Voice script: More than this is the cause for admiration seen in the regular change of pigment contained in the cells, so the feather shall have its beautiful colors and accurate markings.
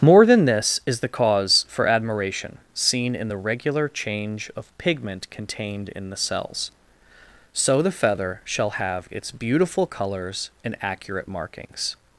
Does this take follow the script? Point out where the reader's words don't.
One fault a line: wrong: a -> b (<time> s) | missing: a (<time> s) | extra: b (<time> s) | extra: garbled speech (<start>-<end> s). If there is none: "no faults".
no faults